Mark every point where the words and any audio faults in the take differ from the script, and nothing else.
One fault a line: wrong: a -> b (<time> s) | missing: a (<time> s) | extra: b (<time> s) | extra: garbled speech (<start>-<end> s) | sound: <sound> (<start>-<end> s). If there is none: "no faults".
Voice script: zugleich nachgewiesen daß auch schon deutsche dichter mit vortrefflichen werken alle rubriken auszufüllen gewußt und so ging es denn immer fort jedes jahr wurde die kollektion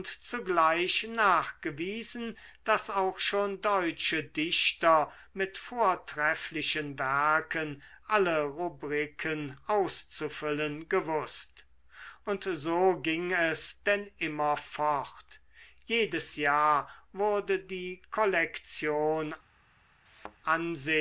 sound: thud (20.1-20.4 s)